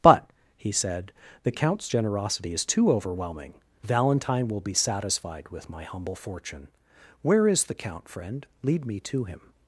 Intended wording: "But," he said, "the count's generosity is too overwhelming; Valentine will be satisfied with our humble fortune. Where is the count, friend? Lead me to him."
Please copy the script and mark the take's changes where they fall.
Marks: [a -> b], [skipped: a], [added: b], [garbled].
"But," he said, "the count's generosity is too overwhelming; Valentine will be satisfied with [our -> my] humble fortune. Where is the count, friend? Lead me to him."